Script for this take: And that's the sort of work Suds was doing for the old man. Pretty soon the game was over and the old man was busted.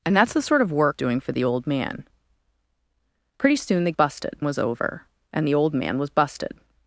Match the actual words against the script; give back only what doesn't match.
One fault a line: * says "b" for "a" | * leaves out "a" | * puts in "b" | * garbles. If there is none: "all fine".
* leaves out "Suds was"
* says "busted" for "game"